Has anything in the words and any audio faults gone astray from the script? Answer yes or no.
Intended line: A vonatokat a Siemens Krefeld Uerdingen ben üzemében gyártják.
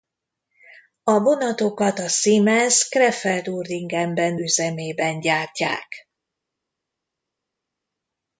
no